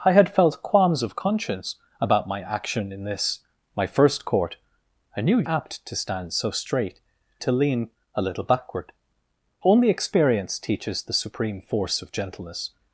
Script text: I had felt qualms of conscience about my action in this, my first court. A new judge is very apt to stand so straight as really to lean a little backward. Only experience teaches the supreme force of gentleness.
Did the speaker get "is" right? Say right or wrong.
wrong